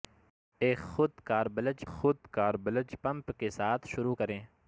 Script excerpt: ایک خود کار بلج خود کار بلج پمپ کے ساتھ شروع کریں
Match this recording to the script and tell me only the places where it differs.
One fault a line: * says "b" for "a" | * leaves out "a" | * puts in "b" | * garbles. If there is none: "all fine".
all fine